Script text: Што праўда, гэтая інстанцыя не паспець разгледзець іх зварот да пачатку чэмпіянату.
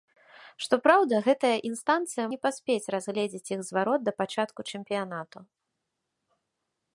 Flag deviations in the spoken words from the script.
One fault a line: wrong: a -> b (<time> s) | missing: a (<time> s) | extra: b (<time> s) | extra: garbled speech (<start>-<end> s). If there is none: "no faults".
no faults